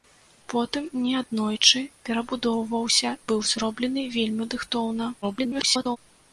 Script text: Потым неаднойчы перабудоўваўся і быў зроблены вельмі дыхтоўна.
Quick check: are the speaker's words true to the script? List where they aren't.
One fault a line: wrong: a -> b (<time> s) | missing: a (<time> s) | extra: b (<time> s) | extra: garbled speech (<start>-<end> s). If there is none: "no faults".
missing: і (3.1 s)
extra: garbled speech (5.2-6.0 s)